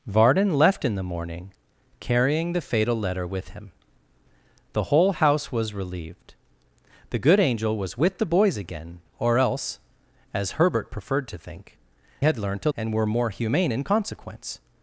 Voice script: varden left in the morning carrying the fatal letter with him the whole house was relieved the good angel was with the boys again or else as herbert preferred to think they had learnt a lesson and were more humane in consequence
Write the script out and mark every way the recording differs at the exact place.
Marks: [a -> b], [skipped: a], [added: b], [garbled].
varden left in the morning carrying the fatal letter with him the whole house was relieved the good angel was with the boys again or else as herbert preferred to think [skipped: they] had learnt a [skipped: lesson] and were more humane in consequence